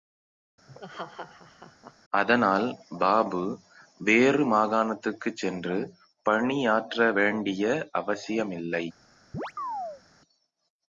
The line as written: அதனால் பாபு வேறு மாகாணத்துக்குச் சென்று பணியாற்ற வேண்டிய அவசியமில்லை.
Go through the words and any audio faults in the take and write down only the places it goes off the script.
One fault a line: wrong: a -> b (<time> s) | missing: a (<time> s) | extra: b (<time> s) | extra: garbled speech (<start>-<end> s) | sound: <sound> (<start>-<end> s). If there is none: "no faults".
sound: laugh (0.7-2.0 s)
sound: chirp (9.3-10.0 s)